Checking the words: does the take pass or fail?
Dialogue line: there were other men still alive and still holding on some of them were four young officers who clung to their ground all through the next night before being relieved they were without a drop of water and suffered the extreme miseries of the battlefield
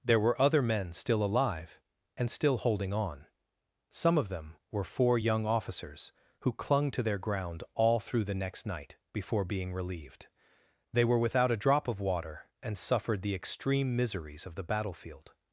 pass